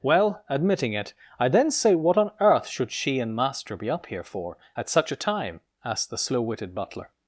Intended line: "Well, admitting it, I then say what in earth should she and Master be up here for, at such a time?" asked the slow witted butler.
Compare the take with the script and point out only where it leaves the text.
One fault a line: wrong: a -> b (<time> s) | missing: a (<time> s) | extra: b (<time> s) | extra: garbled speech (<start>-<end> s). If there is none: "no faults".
wrong: in -> on (2.2 s)